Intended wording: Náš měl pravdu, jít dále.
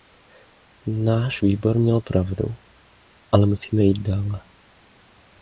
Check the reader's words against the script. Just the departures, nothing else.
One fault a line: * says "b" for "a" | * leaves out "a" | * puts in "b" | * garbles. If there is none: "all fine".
* puts in "výbor"
* puts in "ale musíme"